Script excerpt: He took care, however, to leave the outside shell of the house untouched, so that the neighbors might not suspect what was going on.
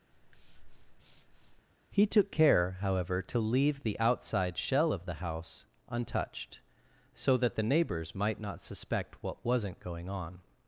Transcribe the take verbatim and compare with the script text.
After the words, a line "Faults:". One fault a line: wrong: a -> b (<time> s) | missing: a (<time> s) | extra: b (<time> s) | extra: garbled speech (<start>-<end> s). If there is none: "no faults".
He took care, however, to leave the outside shell of the house untouched, so that the neighbors might not suspect what wasn't going on.
Faults:
wrong: was -> wasn't (9.4 s)